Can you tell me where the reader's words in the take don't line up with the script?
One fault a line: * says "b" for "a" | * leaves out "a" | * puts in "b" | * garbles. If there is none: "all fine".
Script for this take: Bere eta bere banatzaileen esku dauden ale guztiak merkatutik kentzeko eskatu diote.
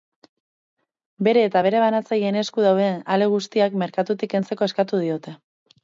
all fine